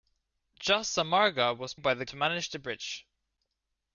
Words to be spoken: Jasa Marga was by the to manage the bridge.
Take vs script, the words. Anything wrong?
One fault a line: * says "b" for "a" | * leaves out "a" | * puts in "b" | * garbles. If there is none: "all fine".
all fine